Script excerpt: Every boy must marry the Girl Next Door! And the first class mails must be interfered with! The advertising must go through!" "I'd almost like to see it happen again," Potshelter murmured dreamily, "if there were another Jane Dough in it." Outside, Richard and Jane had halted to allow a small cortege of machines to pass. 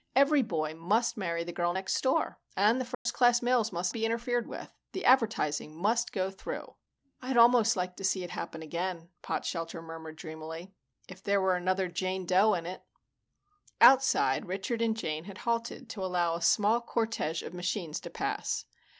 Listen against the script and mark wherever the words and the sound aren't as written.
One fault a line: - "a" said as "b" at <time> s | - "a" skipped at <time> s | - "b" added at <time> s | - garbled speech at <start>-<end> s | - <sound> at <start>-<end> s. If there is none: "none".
- dropout at 2.9-3.1 s